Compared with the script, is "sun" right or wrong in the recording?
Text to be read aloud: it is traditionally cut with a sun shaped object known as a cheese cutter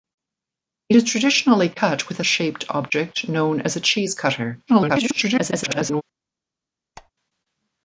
wrong